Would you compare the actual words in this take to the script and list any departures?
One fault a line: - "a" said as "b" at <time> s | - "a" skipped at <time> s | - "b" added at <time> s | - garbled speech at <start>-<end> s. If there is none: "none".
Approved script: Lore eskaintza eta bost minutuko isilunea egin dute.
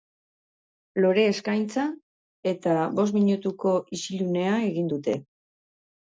none